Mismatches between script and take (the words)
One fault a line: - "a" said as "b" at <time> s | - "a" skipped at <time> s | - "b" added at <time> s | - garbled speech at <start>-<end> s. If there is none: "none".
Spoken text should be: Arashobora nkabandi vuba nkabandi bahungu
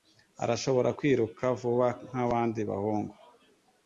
- "nkabandi" said as "kwiruka" at 1.0 s